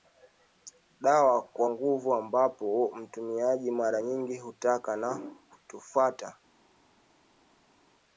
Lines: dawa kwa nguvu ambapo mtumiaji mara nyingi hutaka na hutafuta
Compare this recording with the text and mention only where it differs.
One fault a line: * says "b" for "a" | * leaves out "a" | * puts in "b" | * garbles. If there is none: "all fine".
all fine